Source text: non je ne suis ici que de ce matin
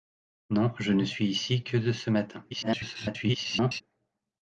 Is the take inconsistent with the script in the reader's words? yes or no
yes